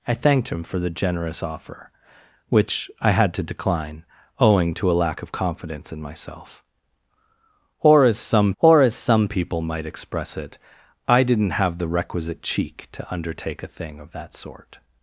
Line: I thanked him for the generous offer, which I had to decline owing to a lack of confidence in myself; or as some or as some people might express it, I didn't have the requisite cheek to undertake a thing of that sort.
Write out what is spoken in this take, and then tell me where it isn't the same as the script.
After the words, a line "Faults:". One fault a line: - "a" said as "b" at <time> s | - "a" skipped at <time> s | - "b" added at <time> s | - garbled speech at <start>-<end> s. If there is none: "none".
I thanked him for the generous offer, which I had to decline owing to a lack of confidence in myself; or as some or as some people might express it, I didn't have the requisite cheek to undertake a thing of that sort.
Faults:
none